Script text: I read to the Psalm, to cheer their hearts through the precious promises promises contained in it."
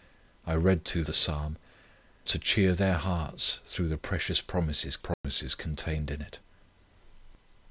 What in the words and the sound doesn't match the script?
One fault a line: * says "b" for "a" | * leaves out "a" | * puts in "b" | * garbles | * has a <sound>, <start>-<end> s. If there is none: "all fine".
* has a dropout, 5.1-5.2 s